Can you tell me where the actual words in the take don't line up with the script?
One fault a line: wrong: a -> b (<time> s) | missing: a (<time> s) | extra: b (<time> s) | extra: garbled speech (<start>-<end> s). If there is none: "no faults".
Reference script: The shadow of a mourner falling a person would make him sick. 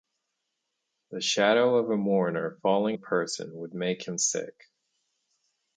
no faults